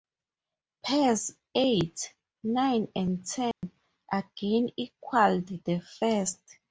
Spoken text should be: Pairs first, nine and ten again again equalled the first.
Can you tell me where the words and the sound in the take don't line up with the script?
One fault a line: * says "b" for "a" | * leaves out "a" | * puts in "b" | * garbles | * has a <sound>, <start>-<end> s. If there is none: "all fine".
* says "eight" for "first"
* has a dropout, 3.5-3.6 s
* leaves out "again"